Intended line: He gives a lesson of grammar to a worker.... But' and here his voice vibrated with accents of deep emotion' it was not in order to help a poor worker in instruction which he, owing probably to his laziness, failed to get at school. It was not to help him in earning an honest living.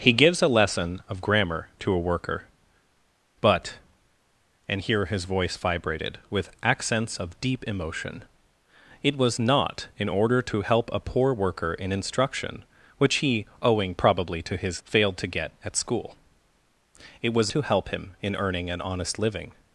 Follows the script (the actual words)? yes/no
no